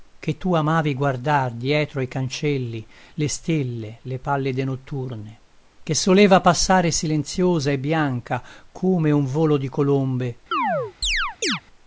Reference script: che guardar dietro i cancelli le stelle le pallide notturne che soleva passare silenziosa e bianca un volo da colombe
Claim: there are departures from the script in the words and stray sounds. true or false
true